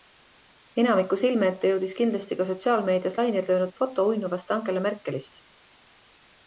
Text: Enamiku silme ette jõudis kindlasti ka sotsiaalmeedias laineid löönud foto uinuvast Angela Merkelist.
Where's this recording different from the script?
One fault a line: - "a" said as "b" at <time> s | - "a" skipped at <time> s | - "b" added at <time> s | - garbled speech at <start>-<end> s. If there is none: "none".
none